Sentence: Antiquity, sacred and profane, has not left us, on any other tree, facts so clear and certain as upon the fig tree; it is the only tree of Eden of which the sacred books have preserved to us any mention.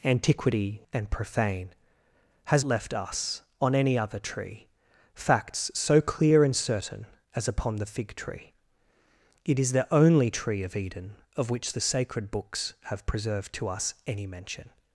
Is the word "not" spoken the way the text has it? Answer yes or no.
no